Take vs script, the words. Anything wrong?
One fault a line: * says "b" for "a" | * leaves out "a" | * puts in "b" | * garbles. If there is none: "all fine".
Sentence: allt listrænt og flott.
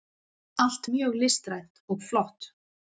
* puts in "mjög"